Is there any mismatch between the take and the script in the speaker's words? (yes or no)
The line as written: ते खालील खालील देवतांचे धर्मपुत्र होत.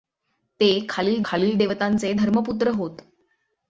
no